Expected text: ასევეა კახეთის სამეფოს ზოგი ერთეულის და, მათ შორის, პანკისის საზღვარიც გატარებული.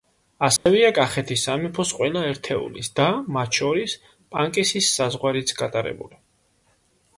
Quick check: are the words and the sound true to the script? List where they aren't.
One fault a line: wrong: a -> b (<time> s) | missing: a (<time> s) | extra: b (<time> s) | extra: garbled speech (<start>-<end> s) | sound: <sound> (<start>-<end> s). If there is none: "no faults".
sound: dropout (0.6-0.7 s)
wrong: ზოგი -> ყველა (2.0 s)